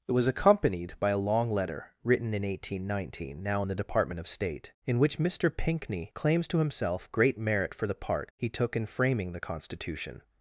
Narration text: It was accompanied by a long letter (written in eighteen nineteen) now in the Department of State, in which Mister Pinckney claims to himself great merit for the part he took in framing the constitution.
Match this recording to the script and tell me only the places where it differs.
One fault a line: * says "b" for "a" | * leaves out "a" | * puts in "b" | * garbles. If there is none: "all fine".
all fine